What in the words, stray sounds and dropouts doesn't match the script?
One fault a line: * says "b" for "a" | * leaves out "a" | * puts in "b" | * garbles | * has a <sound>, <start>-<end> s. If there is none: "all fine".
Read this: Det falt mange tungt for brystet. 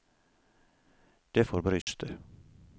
* leaves out "falt mange tungt"
* has a dropout, 1.8-1.9 s